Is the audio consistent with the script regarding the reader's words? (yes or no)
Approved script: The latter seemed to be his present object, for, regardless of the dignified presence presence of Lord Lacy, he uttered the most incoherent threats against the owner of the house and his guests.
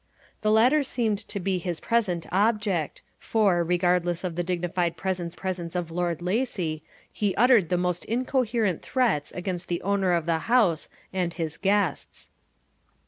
yes